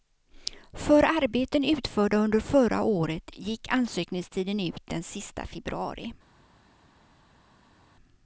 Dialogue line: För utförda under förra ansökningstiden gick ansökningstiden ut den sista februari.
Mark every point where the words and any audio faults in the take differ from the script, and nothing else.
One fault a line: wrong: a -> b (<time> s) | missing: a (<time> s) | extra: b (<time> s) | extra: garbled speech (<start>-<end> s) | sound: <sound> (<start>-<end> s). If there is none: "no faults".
extra: arbeten (1.0 s)
wrong: ansökningstiden -> året (2.8 s)